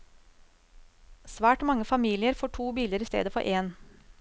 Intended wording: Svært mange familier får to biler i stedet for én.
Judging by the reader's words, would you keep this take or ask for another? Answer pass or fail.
pass